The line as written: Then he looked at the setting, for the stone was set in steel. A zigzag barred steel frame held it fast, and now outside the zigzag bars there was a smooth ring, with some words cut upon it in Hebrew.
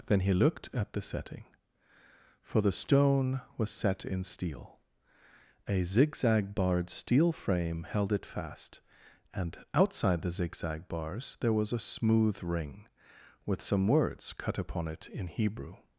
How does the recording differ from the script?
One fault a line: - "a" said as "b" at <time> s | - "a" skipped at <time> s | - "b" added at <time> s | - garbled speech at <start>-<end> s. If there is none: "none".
- "now" skipped at 9.6 s